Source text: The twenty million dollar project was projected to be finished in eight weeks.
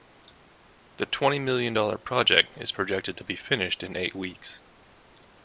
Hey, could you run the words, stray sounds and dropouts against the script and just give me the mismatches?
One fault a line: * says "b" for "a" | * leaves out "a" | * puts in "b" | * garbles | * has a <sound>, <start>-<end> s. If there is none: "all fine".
* says "is" for "was"